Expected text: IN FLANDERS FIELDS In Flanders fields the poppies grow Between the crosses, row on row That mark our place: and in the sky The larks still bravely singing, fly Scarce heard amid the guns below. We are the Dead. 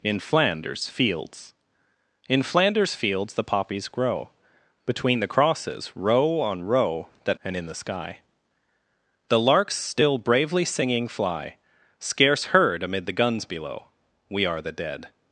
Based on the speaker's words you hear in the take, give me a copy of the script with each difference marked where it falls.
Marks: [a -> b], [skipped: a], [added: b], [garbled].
IN FLANDERS FIELDS In Flanders fields the poppies grow Between the crosses, row on row That [skipped: mark our place:] and in the sky The larks still bravely singing, fly Scarce heard amid the guns below. We are the Dead.